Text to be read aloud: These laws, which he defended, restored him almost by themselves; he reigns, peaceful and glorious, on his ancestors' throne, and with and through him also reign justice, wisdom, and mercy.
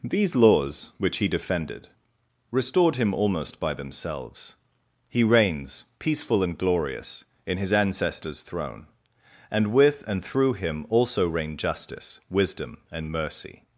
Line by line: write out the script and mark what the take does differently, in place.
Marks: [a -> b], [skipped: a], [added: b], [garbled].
These laws, which he defended, restored him almost by themselves; he reigns, peaceful and glorious, [on -> in] his ancestors' throne, and with and through him also reign justice, wisdom, and mercy.